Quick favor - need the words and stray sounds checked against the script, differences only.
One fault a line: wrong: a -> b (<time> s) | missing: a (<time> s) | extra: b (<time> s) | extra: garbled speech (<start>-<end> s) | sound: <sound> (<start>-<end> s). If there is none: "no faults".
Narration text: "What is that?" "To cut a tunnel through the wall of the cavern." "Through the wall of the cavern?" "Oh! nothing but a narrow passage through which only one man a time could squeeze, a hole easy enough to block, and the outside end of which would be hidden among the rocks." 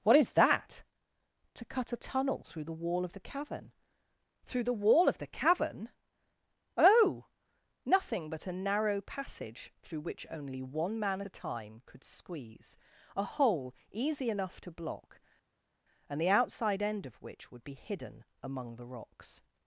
no faults